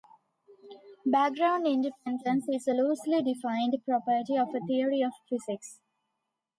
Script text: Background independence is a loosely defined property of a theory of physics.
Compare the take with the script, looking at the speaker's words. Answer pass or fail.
pass